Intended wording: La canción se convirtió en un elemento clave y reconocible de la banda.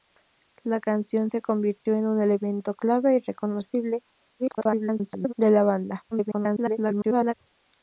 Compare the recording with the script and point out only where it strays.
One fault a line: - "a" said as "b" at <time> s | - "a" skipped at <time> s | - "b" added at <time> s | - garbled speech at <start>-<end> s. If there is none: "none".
- garbled speech at 4.4-5.3 s
- garbled speech at 6.1-7.3 s